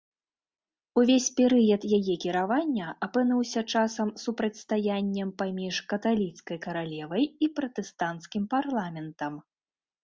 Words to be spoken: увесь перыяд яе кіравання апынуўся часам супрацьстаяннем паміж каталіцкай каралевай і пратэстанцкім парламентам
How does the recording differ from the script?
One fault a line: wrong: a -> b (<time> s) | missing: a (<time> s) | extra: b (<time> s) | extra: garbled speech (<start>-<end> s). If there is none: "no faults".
no faults